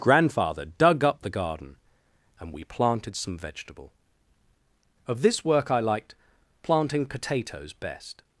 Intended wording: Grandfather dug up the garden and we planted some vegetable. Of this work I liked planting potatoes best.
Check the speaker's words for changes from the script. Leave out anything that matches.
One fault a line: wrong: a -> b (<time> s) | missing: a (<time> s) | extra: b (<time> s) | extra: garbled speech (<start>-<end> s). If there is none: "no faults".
no faults